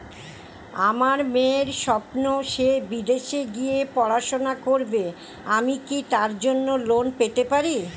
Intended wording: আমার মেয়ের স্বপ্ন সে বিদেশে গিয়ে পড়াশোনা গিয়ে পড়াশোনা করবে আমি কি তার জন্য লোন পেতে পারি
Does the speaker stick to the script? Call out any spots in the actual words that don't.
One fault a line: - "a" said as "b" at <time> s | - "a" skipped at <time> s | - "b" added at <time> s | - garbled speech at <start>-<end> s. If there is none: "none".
- "গিয়ে পড়াশোনা" skipped at 4.5 s